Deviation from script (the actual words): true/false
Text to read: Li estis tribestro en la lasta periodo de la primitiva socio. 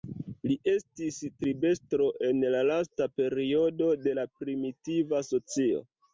false